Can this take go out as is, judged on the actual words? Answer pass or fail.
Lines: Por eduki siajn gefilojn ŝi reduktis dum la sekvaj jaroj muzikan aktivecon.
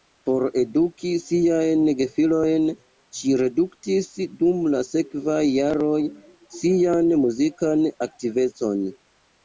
fail